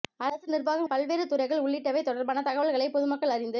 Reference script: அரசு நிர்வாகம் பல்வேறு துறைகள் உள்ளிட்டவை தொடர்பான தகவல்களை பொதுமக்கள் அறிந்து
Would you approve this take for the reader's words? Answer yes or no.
yes